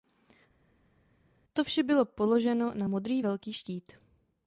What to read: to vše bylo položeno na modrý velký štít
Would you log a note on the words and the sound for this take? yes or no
no